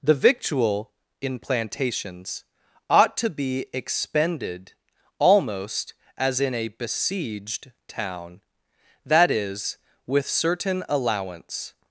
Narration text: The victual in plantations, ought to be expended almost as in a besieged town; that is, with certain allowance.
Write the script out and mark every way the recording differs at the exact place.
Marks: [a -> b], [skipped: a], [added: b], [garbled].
The victual in plantations, ought to be expended almost as in a besieged town; that is, with certain allowance.